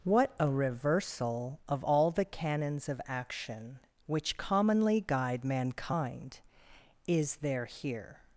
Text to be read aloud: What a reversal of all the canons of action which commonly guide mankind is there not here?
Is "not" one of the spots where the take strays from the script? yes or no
yes